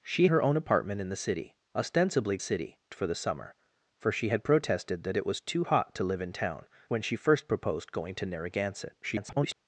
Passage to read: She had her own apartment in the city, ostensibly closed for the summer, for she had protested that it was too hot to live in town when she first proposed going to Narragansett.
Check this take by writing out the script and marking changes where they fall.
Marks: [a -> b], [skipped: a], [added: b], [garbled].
She [skipped: had] her own apartment in the city, ostensibly [closed -> city] for the summer, for she had protested that it was too hot to live in town when she first proposed going to Narragansett. [garbled]